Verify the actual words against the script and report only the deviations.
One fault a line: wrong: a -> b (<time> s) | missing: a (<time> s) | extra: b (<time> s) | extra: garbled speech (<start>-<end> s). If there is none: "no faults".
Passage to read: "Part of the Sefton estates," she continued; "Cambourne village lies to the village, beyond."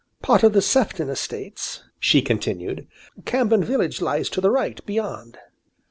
wrong: village -> right (4.5 s)